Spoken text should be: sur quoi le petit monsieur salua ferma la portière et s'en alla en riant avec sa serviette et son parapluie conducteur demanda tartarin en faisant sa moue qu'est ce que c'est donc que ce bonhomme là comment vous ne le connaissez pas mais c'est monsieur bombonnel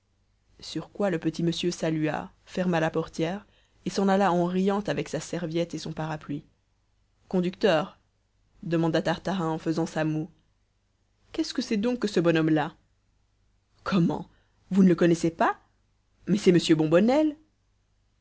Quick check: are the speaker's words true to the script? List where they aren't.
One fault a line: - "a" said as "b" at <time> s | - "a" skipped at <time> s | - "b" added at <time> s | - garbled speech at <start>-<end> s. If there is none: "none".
none